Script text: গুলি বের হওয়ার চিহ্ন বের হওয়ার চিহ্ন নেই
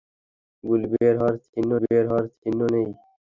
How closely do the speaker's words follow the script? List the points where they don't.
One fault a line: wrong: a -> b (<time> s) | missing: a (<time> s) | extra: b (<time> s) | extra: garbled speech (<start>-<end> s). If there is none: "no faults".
no faults